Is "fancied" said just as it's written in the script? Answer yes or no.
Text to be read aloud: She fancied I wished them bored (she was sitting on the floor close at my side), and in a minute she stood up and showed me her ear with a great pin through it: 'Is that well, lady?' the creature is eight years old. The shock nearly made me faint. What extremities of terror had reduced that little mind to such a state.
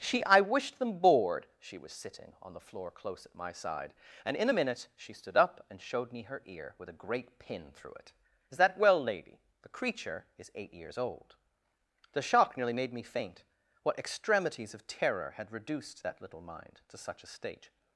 no